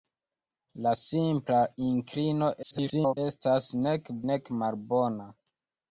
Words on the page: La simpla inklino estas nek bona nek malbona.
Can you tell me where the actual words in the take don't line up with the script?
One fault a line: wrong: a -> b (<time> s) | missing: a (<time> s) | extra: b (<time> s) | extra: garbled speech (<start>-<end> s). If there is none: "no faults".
extra: garbled speech (2.6-3.2 s)
missing: bona (4.2 s)